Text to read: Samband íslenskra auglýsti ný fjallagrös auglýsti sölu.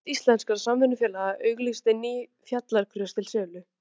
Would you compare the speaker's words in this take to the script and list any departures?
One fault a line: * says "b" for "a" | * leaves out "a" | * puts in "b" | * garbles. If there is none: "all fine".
* puts in "samvinnufélaga"
* says "til" for "auglýsti"